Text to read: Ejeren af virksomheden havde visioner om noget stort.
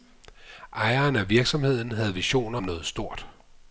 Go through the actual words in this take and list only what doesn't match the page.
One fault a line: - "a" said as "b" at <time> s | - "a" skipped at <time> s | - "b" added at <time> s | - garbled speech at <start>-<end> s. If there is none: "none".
- "om" skipped at 2.6 s